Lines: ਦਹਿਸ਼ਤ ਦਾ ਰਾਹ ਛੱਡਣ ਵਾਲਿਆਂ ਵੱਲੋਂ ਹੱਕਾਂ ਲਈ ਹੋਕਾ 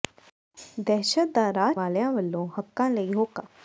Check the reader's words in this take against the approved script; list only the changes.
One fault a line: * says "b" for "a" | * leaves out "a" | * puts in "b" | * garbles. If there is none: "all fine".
* leaves out "ਛੱਡਣ"